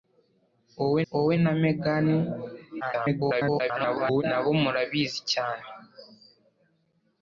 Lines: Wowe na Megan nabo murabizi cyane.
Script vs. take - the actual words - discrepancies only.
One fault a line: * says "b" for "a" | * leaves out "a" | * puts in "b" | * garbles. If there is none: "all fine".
* puts in "wowe"
* garbles